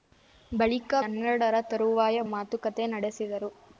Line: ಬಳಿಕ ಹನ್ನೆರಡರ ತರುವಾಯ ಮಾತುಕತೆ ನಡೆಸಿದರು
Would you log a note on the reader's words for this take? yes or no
no